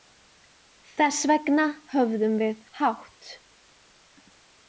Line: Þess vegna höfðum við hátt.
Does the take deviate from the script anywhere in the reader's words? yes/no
no